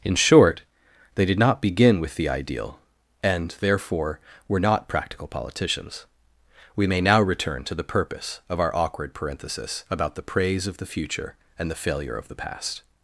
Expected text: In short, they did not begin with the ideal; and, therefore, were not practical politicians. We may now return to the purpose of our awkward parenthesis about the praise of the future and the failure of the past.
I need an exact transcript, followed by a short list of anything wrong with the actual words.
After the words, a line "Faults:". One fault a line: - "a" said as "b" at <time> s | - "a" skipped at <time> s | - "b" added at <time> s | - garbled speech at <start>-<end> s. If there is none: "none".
In short, they did not begin with the ideal; and, therefore, were not practical politicians. We may now return to the purpose of our awkward parenthesis about the praise of the future and the failure of the past.
Faults:
none